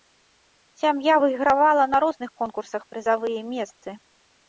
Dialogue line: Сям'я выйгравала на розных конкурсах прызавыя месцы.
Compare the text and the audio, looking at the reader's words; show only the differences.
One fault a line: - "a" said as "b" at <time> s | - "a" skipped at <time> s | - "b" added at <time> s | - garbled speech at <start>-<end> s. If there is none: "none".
none